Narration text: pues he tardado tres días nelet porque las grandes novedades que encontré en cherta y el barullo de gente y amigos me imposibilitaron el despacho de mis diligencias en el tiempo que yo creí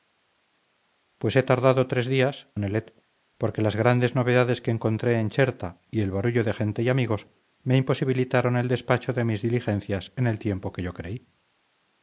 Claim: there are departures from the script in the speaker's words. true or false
false